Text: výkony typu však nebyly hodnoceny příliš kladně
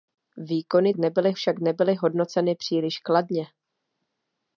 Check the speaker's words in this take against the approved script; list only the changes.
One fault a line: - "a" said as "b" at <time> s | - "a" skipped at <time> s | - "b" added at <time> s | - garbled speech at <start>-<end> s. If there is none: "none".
- "typu" said as "nebyly" at 1.0 s